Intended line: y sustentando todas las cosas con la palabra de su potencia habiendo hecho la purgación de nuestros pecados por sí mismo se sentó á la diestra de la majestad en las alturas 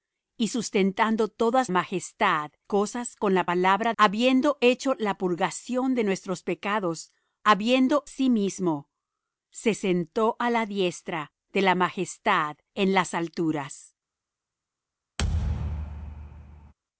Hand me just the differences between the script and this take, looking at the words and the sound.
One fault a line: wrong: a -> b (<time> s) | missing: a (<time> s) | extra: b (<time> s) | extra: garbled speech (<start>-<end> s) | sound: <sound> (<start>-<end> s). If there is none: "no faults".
wrong: las -> majestad (1.7 s)
missing: de su potencia (3.9 s)
wrong: por -> habiendo (7.4 s)
sound: thud (15.2-16.7 s)